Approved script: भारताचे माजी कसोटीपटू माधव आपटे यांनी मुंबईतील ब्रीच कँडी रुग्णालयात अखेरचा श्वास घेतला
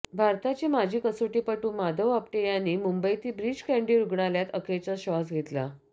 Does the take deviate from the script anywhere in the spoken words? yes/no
no